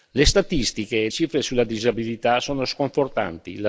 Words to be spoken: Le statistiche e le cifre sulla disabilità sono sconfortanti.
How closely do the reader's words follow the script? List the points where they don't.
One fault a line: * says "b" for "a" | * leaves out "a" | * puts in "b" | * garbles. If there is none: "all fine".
* leaves out "le"